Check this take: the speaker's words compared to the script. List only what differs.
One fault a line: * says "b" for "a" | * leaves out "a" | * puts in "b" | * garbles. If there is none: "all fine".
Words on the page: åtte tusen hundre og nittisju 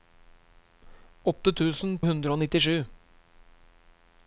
all fine